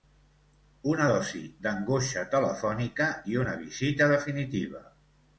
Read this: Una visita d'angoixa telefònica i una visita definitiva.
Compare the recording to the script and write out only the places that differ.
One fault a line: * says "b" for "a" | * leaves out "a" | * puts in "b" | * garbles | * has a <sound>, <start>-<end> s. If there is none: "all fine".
* says "dosi" for "visita"